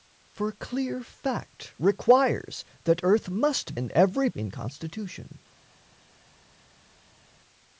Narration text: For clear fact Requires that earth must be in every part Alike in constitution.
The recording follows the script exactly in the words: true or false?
false